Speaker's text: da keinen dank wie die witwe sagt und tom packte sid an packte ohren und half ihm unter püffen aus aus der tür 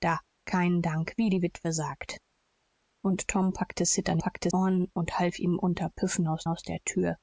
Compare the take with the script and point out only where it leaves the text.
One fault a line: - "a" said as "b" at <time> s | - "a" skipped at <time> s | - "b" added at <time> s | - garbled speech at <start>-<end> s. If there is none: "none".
none